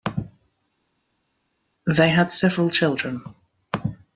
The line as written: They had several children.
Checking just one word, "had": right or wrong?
right